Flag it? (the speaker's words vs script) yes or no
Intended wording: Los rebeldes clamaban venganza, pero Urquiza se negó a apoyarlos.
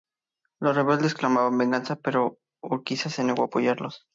no